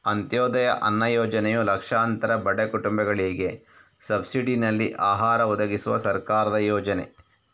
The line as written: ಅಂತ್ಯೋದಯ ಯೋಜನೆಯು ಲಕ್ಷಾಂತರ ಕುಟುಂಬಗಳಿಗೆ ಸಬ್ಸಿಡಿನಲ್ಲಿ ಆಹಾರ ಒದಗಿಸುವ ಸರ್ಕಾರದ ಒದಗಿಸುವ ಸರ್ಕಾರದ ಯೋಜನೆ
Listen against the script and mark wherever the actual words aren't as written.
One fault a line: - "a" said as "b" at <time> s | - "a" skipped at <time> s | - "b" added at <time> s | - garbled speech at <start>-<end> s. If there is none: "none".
- "ಅನ್ನ" added at 0.8 s
- "ಬಡ" added at 2.5 s
- "ಒದಗಿಸುವ ಸರ್ಕಾರದ" skipped at 6.6 s